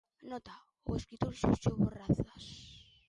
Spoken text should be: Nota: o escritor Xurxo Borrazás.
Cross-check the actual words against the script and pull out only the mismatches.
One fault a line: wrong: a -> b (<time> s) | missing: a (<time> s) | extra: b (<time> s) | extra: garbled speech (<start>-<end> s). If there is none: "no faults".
no faults